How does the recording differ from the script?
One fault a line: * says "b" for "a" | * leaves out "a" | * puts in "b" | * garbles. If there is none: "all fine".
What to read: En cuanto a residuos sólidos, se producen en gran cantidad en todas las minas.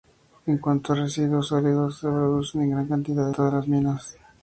* leaves out "en"